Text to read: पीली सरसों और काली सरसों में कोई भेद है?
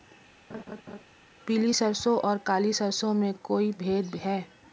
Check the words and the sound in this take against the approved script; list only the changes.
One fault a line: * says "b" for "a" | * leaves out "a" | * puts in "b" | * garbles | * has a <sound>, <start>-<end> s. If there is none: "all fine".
* has a laugh, 0.5-1.0 s